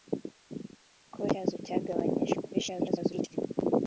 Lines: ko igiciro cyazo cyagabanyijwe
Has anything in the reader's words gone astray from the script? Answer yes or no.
yes